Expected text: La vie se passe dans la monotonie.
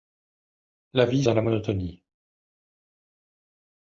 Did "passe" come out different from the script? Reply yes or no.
yes